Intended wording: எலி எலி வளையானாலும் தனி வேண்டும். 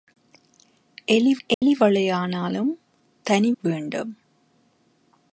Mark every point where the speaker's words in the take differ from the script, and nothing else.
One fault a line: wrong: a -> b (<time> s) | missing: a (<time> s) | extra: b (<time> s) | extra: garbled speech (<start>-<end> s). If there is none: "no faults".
no faults